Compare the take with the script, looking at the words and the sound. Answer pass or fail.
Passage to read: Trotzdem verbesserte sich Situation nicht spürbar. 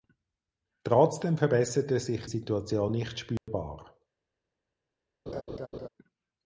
fail